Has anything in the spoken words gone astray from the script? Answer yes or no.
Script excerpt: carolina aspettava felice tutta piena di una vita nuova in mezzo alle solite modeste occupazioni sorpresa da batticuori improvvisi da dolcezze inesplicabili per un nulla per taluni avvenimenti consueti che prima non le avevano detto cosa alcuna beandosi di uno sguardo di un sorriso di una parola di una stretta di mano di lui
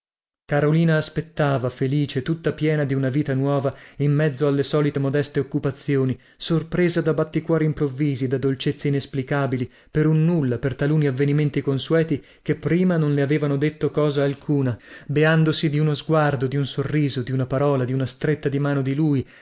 no